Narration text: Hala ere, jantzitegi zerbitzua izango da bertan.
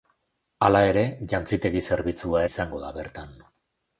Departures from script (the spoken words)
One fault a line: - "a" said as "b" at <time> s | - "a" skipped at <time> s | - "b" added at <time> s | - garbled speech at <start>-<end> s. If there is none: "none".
none